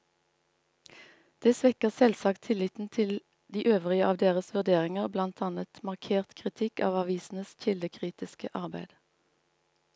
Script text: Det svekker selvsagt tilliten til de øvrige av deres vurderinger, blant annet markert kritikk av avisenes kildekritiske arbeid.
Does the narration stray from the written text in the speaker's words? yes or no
no